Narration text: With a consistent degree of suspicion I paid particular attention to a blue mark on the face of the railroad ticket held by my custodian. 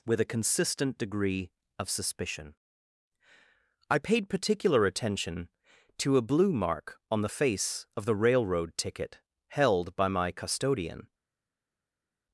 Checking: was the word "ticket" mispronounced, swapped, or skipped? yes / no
no